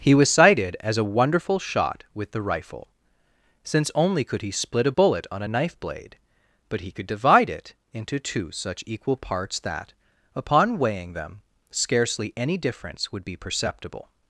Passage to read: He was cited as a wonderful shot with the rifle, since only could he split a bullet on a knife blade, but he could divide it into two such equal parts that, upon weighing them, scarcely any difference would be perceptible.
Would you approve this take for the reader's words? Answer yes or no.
yes